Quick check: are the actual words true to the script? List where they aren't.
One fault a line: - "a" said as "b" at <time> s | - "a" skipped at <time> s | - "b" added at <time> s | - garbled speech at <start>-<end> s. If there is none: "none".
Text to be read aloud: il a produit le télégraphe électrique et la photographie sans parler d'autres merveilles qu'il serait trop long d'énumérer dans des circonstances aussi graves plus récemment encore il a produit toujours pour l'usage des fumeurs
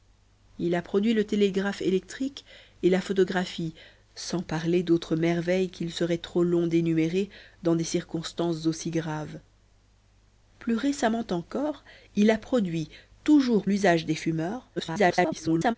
- "pour" skipped at 13.7 s
- garbled speech at 14.8-15.8 s